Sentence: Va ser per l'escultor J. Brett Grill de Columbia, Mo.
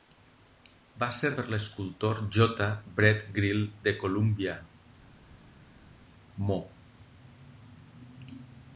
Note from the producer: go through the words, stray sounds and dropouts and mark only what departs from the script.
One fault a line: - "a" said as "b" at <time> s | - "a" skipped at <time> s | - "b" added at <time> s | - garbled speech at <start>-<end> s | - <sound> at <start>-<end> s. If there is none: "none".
none